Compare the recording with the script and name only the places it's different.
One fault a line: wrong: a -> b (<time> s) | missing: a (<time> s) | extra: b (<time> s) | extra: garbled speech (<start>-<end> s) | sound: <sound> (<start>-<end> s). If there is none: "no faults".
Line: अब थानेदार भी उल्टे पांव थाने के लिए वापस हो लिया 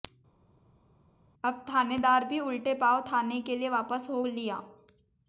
no faults